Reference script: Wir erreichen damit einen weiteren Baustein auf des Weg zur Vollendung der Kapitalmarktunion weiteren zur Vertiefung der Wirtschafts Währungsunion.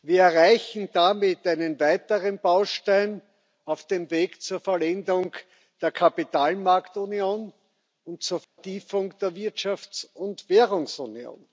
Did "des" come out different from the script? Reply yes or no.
yes